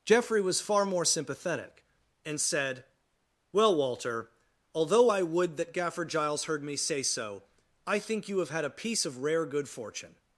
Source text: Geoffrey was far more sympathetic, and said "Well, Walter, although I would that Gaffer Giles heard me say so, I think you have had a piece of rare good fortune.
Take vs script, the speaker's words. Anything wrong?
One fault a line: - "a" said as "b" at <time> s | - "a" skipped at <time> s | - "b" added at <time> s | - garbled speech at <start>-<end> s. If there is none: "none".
none